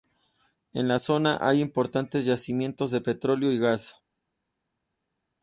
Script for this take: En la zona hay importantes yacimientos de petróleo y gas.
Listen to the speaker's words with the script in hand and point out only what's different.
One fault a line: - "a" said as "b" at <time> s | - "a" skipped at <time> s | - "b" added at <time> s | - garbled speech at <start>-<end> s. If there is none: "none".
none